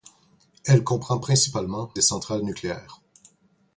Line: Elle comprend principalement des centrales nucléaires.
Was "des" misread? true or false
false